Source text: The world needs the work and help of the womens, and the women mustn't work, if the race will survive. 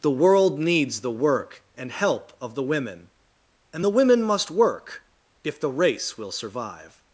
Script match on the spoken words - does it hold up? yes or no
no